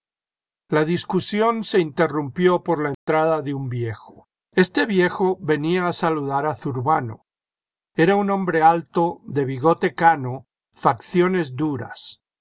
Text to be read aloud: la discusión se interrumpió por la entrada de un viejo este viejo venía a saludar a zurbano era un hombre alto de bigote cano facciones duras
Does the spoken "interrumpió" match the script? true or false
true